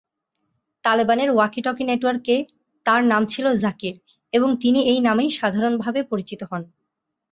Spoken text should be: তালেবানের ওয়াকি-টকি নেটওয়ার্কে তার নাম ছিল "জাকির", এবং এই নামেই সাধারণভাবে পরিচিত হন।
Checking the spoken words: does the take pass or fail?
fail